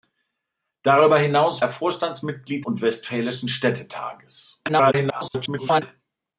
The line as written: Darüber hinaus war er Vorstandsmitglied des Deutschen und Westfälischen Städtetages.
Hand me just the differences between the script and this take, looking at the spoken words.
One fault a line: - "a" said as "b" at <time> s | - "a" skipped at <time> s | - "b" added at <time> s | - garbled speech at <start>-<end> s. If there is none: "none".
- "war" skipped at 1.6 s
- "des Deutschen" skipped at 2.7 s
- garbled speech at 4.7-5.8 s